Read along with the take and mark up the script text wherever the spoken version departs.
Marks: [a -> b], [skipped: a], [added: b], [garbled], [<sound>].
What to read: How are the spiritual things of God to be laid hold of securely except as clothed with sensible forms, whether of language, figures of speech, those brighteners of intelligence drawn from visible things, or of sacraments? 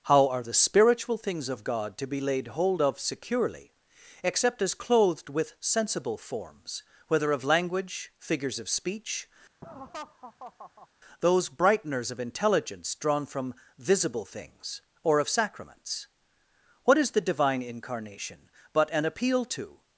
How are the spiritual things of God to be laid hold of securely except as clothed with sensible forms, whether of language, figures of speech, [laugh] those brighteners of intelligence drawn from visible things, or of sacraments? [added: What is the Divine Incarnation but an appeal to]